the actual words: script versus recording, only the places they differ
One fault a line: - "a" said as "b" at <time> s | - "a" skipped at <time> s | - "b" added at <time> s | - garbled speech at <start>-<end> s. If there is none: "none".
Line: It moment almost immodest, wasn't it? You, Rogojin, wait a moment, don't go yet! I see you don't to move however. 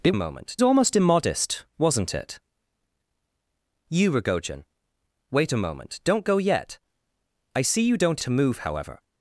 none